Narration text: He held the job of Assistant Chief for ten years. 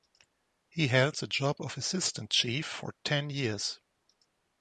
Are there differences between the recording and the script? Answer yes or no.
no